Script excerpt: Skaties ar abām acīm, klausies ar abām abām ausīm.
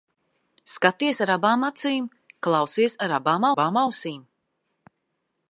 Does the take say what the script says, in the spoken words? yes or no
yes